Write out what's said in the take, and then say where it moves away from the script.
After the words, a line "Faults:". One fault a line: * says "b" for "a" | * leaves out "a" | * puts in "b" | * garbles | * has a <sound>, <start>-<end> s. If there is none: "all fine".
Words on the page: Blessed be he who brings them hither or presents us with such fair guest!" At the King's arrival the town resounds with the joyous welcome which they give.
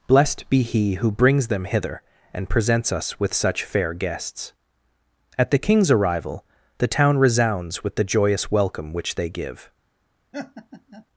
Blessed be he who brings them hither and presents us with such fair guests!" At the King's arrival the town resounds with the joyous welcome which they give.
Faults:
* says "and" for "or"
* says "guests" for "guest"
* has a laugh, 10.3-11.1 s